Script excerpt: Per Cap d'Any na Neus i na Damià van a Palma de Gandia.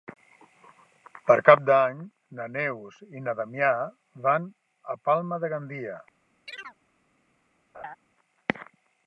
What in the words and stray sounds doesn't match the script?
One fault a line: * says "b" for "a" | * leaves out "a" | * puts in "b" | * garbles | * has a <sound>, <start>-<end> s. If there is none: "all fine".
* has a chirp, 6.5-6.8 s
* has a laugh, 7.7-8.0 s